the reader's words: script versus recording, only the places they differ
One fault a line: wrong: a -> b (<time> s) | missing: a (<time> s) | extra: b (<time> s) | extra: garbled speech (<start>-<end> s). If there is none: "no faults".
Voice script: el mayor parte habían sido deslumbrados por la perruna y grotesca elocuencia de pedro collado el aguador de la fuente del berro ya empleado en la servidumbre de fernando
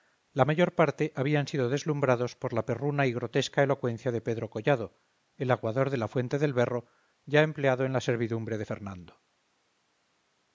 wrong: el -> la (0.3 s)